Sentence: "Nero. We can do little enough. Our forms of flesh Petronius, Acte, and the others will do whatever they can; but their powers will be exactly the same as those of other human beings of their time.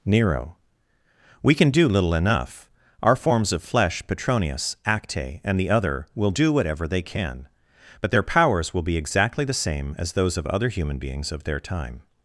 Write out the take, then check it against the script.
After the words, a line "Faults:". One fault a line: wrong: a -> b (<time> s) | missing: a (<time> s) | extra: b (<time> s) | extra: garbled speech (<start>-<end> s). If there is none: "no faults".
"Nero. We can do little enough. Our forms of flesh Petronius, Acte, and the other will do whatever they can; but their powers will be exactly the same as those of other human beings of their time.
Faults:
wrong: others -> other (5.7 s)